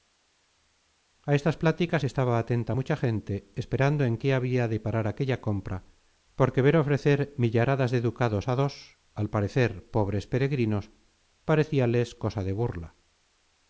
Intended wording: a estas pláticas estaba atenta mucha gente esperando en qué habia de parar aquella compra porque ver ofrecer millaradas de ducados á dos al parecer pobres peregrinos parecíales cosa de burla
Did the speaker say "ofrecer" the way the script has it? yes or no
yes